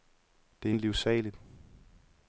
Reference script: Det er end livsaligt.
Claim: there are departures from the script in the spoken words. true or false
false